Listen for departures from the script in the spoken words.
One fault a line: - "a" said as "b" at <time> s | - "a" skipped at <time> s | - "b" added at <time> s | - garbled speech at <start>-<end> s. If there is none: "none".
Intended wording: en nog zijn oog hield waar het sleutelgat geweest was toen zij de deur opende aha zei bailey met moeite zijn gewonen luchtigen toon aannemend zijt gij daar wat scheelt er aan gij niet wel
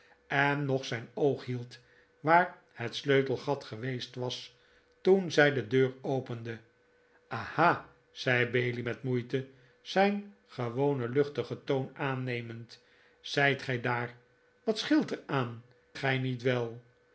none